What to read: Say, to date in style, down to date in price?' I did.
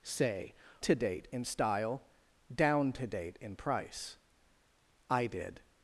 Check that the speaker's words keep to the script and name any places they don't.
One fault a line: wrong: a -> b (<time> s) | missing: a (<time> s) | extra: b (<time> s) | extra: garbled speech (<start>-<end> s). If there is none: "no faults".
no faults